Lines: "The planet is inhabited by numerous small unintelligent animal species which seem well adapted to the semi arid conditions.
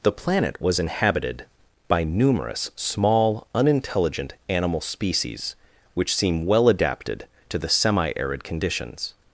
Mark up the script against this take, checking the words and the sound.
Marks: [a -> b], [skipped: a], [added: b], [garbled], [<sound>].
"The planet [is -> was] inhabited by numerous small unintelligent animal species which seem well adapted to the semi arid conditions.